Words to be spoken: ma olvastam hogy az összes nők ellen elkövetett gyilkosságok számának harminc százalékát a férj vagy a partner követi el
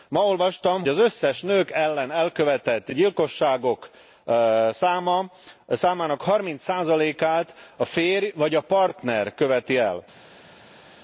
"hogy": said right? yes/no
no